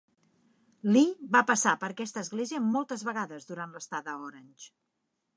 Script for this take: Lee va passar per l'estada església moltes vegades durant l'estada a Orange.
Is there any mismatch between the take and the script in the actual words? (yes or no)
yes